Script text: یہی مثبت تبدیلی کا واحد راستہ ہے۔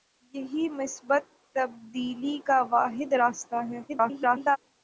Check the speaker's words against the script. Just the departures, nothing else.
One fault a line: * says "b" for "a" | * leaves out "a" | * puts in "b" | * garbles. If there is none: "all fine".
* garbles